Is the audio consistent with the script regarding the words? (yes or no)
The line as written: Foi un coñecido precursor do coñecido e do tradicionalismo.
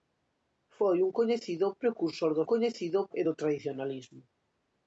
yes